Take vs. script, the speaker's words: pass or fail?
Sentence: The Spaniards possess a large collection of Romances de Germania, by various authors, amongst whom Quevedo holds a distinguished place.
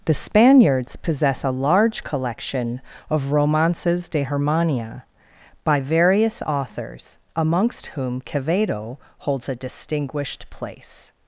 pass